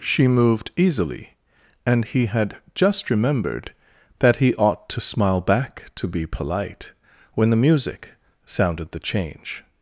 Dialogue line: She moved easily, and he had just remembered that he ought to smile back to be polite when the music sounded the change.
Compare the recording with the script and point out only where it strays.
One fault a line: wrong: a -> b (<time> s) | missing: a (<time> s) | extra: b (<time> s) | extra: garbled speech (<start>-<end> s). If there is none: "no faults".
no faults